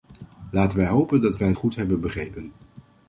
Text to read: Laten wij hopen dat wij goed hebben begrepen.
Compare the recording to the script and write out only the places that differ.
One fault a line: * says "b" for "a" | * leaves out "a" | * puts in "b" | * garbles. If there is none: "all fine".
all fine